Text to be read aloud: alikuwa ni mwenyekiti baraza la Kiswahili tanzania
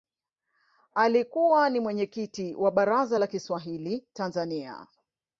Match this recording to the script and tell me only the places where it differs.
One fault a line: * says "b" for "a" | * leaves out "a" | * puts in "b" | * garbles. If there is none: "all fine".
* puts in "wa"